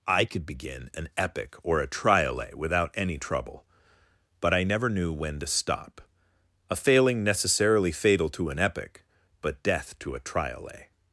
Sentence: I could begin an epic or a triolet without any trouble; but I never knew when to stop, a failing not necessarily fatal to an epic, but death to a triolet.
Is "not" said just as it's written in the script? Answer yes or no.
no